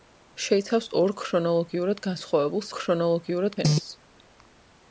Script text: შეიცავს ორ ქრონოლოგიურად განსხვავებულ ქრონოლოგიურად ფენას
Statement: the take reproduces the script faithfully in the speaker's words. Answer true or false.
true